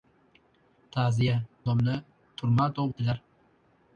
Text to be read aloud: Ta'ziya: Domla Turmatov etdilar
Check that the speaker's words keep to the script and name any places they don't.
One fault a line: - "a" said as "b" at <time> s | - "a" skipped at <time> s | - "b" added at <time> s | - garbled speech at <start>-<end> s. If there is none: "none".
none